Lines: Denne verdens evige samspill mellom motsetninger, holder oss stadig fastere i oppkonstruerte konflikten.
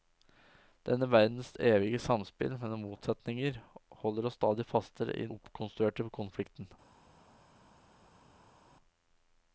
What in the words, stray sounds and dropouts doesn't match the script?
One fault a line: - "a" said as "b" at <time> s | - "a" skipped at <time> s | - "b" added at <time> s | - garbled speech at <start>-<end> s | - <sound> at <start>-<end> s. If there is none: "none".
none